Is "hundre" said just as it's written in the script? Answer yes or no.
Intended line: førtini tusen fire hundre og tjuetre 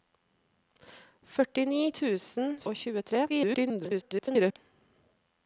no